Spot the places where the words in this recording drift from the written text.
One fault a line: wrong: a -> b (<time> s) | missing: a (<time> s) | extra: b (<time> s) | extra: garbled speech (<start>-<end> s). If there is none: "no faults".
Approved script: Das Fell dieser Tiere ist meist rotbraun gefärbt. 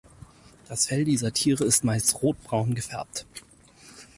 no faults